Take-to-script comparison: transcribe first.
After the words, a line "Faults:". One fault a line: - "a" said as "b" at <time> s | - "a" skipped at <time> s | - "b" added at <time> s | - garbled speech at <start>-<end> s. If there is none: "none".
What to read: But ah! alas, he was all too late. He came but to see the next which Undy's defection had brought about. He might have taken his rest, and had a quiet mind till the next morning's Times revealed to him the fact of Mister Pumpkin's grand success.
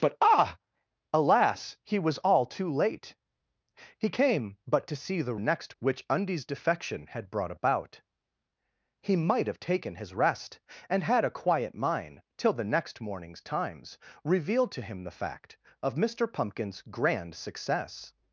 But ah! alas, he was all too late. He came but to see the next which Undy's defection had brought about. He might have taken his rest, and had a quiet mind till the next morning's Times revealed to him the fact of Mister Pumpkin's grand success.
Faults:
none